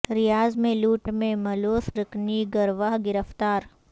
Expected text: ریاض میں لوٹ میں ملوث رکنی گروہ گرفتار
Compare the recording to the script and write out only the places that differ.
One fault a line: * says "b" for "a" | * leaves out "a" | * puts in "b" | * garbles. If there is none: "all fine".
all fine